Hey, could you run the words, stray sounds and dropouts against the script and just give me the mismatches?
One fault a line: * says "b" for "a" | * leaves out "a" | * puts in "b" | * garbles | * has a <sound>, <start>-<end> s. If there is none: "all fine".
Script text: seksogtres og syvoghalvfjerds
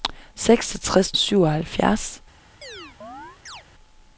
* has a chirp, 2.6-3.6 s